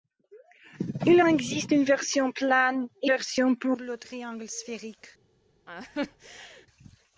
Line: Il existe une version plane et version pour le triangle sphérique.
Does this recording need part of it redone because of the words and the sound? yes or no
yes